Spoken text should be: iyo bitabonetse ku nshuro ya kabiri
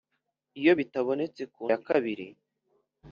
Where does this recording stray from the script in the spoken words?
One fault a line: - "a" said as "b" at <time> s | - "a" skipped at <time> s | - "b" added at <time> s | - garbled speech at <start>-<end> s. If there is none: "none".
- "nshuro" skipped at 1.6 s